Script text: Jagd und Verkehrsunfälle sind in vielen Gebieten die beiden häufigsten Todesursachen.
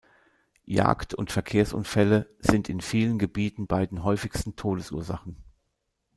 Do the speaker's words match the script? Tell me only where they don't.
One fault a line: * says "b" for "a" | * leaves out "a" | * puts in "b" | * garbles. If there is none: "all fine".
* leaves out "die"